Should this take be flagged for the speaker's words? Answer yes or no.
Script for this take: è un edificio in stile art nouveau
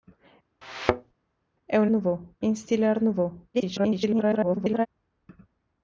yes